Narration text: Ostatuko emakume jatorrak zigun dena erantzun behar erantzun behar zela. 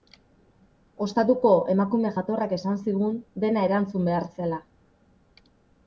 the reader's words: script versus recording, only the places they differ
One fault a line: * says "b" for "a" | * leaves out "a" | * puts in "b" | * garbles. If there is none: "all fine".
* puts in "esan"
* leaves out "erantzun behar"